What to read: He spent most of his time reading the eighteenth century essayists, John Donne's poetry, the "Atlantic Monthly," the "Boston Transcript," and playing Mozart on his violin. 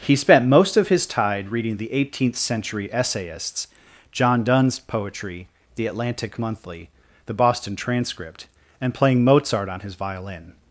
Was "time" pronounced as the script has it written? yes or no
no